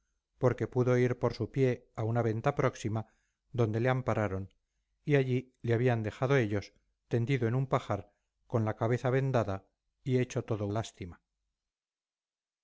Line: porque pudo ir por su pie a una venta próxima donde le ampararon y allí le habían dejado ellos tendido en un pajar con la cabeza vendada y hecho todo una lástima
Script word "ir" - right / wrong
right